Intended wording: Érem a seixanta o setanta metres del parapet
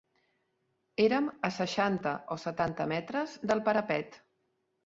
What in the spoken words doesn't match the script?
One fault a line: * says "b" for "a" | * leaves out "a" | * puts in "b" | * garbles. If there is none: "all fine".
all fine